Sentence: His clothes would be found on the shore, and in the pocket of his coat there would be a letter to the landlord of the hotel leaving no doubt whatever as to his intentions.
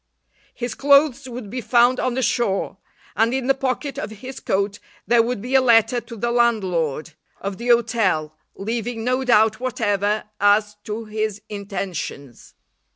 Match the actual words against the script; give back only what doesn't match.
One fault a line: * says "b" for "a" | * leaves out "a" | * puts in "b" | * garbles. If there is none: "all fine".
all fine